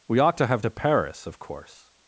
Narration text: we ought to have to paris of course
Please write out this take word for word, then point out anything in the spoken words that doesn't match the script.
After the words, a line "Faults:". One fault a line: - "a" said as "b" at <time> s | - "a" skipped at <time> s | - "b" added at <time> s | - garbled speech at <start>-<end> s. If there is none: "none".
we ought to have to paris of course
Faults:
none